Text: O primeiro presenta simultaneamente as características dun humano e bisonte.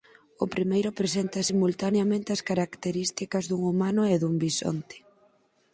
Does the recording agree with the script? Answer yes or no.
no